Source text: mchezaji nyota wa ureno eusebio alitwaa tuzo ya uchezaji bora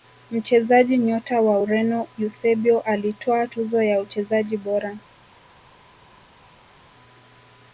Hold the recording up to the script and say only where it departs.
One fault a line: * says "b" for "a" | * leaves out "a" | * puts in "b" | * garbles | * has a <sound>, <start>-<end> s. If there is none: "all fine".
all fine